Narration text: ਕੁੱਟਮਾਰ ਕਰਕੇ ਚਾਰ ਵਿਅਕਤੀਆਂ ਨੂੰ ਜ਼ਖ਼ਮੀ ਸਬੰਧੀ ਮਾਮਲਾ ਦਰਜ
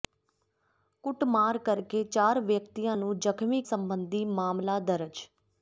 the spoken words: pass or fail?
pass